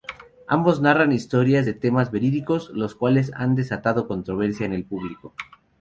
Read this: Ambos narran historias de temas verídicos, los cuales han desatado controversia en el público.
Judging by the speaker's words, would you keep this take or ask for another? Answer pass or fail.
pass